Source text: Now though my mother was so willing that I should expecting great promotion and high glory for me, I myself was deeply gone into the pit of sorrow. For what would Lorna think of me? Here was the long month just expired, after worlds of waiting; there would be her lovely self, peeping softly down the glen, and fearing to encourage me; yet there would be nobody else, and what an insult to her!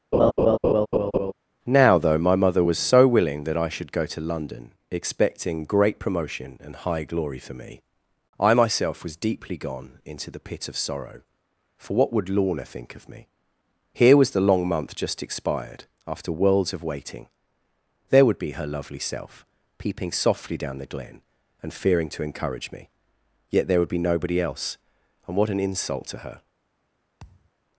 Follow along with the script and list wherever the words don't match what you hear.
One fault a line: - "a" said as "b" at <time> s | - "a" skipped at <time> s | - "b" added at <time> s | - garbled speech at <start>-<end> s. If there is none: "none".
- "go to London" added at 3.9 s